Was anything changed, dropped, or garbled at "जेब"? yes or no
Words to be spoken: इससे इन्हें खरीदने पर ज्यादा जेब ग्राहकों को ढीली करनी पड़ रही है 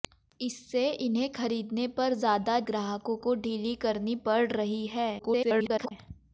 yes